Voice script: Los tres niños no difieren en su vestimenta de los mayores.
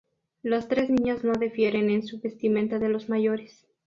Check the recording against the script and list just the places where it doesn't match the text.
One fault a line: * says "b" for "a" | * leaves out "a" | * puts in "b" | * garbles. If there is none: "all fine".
all fine